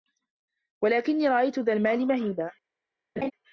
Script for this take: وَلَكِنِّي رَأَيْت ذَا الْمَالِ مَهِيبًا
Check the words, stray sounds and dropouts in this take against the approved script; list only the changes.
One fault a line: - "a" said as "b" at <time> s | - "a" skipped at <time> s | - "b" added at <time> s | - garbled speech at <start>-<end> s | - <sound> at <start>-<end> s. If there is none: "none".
- laugh at 3.2-3.3 s